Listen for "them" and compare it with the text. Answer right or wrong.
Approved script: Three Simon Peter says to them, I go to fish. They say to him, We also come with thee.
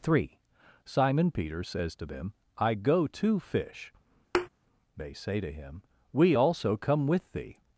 right